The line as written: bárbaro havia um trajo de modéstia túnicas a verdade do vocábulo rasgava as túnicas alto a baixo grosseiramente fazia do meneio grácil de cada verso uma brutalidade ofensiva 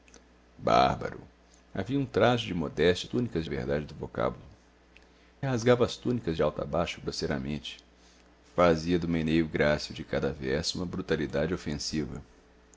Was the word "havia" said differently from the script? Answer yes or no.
no